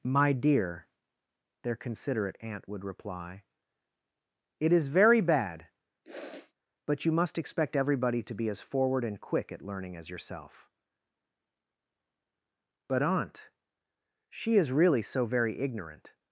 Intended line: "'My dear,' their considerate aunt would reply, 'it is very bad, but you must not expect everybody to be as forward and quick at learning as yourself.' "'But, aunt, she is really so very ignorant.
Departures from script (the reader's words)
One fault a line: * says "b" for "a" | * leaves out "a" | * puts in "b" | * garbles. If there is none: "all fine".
* leaves out "not"